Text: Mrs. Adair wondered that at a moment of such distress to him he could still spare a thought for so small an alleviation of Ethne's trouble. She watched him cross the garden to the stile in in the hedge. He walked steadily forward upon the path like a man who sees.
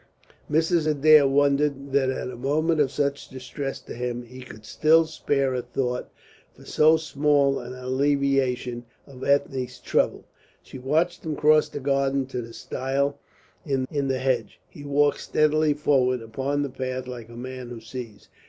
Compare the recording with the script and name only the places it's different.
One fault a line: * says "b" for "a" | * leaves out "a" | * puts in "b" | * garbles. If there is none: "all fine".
all fine